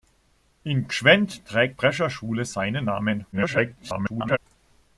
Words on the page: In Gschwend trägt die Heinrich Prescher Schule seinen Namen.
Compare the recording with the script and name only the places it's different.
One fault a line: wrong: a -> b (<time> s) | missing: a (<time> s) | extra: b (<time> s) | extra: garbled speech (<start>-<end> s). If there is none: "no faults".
missing: die Heinrich (1.8 s)
extra: garbled speech (3.3-4.4 s)